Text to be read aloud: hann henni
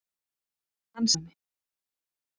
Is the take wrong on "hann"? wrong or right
right